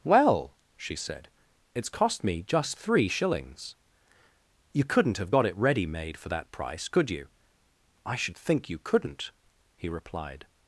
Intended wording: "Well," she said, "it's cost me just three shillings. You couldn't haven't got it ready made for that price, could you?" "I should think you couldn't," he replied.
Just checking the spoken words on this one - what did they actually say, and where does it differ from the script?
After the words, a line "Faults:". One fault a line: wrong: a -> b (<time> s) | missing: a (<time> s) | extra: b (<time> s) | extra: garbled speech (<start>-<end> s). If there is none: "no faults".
"Well," she said, "it's cost me just three shillings. You couldn't have got it ready made for that price, could you?" "I should think you couldn't," he replied.
Faults:
wrong: haven't -> have (5.2 s)